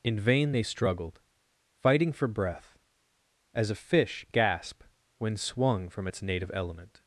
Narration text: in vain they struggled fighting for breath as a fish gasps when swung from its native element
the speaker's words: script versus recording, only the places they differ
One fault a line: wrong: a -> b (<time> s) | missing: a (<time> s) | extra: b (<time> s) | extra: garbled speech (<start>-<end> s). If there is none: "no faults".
wrong: gasps -> gasp (4.3 s)